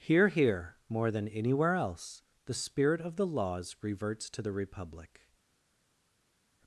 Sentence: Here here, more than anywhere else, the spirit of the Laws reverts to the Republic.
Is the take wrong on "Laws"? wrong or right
right